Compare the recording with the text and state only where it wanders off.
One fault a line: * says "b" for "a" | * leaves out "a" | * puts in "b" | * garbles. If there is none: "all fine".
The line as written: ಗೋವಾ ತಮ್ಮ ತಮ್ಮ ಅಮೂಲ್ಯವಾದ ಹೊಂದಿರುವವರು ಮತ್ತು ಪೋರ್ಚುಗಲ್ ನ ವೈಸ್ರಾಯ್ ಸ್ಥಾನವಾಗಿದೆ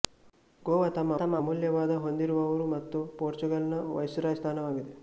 all fine